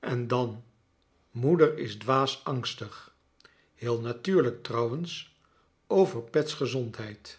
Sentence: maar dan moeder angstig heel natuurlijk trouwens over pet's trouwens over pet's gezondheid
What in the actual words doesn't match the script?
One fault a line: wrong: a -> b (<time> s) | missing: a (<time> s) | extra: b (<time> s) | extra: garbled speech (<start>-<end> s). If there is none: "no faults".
wrong: maar -> en (0.0 s)
extra: is dwaas (1.8 s)
missing: trouwens over pet's (6.5 s)